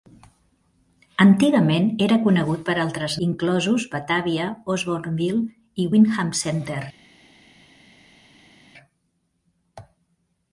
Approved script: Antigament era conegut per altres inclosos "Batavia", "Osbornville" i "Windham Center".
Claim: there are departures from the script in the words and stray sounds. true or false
false